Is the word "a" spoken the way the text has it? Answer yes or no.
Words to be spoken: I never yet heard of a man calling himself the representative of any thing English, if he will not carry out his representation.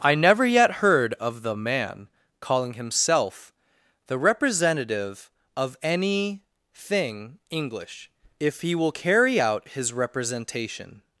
no